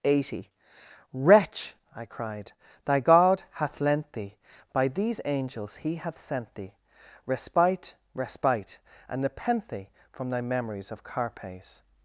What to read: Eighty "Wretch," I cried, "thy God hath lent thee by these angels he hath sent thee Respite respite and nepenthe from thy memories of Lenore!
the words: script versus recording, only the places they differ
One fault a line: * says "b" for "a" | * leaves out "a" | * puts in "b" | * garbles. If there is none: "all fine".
* says "Carpes" for "Lenore"